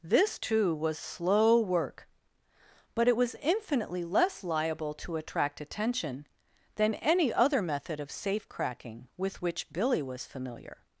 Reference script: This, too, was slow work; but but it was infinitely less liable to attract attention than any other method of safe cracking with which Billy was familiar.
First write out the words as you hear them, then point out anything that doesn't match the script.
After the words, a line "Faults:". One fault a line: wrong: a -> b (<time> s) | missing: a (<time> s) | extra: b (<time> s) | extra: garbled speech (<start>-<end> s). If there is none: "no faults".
This, too, was slow work; but it was infinitely less liable to attract attention than any other method of safe cracking with which Billy was familiar.
Faults:
missing: but (3.1 s)